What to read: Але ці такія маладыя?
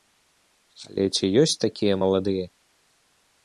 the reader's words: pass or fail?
fail